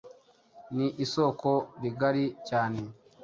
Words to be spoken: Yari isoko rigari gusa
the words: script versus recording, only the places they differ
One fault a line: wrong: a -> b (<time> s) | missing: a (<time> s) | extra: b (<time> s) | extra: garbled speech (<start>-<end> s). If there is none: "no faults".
wrong: Yari -> Ni (0.8 s)
wrong: gusa -> cyane (2.5 s)